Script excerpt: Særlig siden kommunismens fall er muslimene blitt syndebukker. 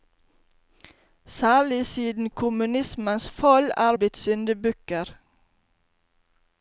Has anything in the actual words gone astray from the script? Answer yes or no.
yes